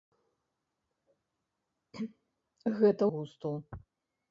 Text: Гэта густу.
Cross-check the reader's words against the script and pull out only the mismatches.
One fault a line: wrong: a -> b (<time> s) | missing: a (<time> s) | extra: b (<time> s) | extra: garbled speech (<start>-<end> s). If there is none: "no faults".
no faults